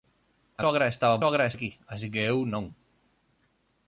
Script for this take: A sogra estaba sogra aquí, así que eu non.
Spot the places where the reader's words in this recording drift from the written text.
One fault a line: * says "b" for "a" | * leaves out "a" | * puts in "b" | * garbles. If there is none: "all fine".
all fine